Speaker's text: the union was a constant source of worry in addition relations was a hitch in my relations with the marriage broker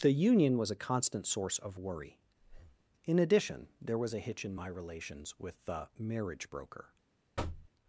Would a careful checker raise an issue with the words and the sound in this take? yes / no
yes